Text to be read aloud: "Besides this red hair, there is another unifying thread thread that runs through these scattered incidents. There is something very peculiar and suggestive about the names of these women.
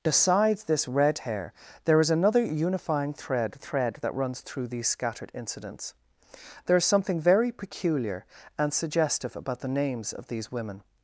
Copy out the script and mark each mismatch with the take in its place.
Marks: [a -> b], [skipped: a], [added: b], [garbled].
"Besides this red hair, there is another unifying thread thread that runs through these scattered incidents. There is something very peculiar and suggestive about the names of these women.